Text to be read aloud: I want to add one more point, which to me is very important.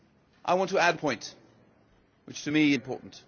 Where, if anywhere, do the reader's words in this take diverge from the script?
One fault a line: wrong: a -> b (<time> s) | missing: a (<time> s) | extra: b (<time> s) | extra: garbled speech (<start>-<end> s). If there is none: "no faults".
missing: one more (1.0 s)
missing: is very (2.7 s)